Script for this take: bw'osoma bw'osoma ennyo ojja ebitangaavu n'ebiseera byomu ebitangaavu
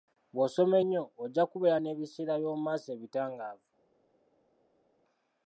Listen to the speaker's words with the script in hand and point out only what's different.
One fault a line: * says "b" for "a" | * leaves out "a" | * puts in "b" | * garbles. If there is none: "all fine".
* leaves out "bw'osoma"
* says "kubeera" for "ebitangaavu"
* puts in "maaso"